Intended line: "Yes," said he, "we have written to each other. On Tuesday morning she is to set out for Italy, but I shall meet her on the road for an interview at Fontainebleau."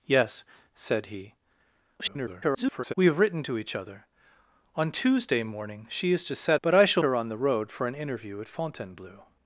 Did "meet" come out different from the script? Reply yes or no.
yes